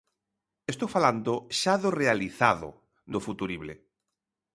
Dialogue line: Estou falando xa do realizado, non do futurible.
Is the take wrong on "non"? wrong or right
wrong